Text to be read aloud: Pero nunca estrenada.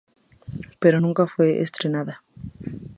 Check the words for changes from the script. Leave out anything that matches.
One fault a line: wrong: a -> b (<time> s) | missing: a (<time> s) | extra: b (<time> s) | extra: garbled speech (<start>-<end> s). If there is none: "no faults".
extra: fue (1.3 s)